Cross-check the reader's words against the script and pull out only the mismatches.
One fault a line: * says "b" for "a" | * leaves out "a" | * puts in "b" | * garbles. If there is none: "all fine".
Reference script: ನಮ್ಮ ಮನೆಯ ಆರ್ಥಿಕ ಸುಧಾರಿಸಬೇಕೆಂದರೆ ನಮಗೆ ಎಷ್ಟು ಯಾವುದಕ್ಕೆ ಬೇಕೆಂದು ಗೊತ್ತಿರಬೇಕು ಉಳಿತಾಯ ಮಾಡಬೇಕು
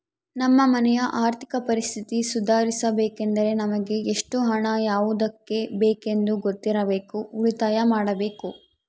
* puts in "ಪರಿಸ್ಥಿತಿ"
* puts in "ಹಣ"